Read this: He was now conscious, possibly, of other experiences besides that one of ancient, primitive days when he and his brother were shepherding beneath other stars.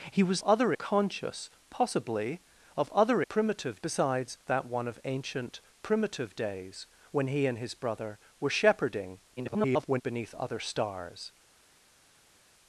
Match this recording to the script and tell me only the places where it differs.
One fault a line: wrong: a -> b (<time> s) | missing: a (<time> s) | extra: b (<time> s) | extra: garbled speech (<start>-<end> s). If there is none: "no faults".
wrong: now -> other (0.4 s)
wrong: experiences -> primitive (3.3 s)
extra: garbled speech (9.4-10.0 s)